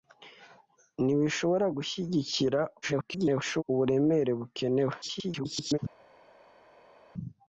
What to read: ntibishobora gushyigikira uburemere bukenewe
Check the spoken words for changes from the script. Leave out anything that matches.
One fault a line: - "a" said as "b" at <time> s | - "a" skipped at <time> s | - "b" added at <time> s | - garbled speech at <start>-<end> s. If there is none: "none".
- garbled speech at 2.8-3.6 s
- garbled speech at 5.0-5.8 s